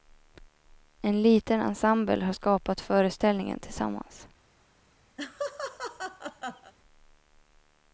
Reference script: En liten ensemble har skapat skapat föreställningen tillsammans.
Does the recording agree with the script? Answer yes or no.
no